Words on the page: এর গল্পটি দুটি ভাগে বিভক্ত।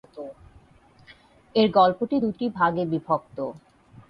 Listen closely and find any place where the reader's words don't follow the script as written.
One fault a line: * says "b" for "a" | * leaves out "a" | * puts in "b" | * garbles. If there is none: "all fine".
all fine